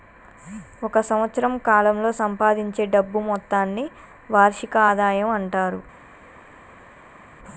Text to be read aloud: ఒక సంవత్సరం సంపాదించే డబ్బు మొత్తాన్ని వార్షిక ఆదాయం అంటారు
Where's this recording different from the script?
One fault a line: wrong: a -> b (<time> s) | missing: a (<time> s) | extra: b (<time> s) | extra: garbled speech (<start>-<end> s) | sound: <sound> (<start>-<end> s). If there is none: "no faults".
extra: కాలంలో (1.7 s)